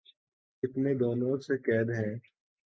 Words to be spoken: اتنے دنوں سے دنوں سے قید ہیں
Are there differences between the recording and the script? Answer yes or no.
yes